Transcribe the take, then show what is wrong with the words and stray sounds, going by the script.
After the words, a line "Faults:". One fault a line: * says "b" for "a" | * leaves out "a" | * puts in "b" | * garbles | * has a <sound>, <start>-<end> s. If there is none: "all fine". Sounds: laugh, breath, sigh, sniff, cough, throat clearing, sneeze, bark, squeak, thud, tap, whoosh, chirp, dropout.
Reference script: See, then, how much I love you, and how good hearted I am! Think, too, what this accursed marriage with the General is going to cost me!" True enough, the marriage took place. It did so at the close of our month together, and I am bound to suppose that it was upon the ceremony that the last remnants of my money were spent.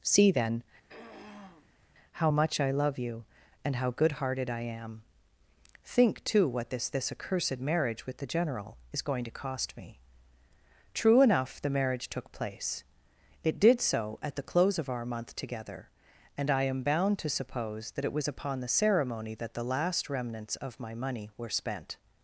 See, then, how much I love you, and how good hearted I am! Think, too, what this this accursed marriage with the General is going to cost me!" True enough, the marriage took place. It did so at the close of our month together, and I am bound to suppose that it was upon the ceremony that the last remnants of my money were spent.
Faults:
* has a throat clearing, 0.9-1.9 s
* puts in "this"